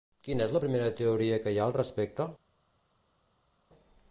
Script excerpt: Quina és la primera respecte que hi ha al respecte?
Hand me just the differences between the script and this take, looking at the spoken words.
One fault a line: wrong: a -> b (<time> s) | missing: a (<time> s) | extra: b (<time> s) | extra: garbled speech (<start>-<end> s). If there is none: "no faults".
wrong: respecte -> teoria (1.0 s)